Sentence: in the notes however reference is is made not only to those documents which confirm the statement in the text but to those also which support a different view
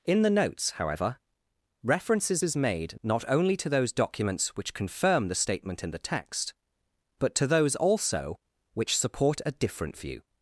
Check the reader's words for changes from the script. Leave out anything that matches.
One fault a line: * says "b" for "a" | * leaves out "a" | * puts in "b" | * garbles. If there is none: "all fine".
all fine